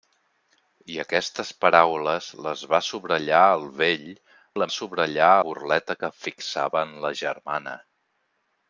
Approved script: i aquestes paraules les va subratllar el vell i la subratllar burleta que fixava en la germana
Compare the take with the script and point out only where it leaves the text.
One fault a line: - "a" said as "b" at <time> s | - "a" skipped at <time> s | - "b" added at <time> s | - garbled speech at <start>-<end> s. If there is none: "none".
none